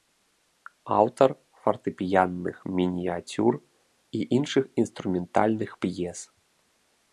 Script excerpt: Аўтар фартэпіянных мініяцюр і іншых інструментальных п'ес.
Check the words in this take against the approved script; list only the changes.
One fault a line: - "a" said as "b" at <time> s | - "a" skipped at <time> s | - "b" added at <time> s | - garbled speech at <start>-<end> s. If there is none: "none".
none